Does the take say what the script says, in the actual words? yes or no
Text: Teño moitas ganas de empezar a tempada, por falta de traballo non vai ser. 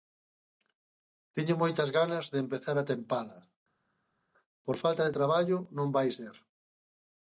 yes